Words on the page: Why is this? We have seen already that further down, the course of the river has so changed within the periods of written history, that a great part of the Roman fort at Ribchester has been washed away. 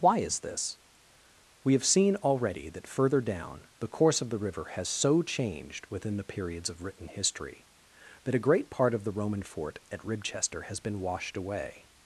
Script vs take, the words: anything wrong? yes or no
no